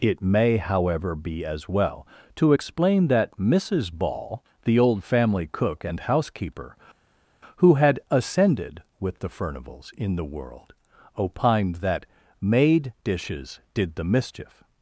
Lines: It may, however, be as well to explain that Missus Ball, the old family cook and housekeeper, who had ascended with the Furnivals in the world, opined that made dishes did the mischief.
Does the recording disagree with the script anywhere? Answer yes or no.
no